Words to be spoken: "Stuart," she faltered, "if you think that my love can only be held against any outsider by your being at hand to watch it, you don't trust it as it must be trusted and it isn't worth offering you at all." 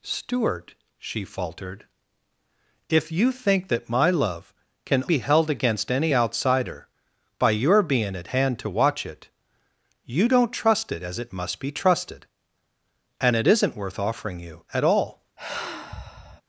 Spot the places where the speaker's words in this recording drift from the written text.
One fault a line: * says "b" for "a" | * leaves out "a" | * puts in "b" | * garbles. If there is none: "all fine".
* leaves out "only"